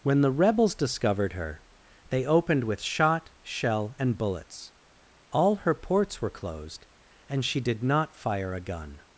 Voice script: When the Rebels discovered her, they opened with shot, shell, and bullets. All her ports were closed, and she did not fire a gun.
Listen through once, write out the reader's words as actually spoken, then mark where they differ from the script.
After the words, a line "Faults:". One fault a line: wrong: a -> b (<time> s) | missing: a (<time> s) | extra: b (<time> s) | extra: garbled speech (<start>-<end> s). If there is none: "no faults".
When the Rebels discovered her, they opened with shot, shell, and bullets. All her ports were closed, and she did not fire a gun.
Faults:
no faults